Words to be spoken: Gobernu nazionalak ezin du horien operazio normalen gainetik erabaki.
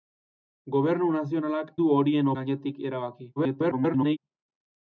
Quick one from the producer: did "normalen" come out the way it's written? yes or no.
no